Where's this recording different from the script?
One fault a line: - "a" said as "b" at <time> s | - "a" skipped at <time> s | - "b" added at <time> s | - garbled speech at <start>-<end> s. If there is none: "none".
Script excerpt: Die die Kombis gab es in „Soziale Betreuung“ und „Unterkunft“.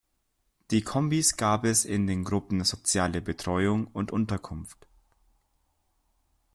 - "die" skipped at 0.8 s
- "den Gruppen" added at 2.1 s